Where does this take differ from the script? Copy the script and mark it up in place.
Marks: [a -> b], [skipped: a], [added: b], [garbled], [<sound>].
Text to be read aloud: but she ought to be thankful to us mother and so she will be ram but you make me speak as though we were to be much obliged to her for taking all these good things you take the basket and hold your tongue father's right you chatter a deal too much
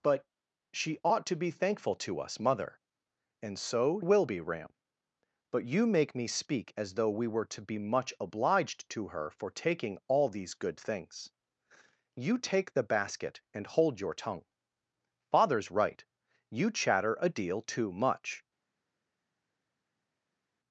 but she ought to be thankful to us mother and so [skipped: she] will be ram but you make me speak as though we were to be much obliged to her for taking all these good things you take the basket and hold your tongue father's right you chatter a deal too much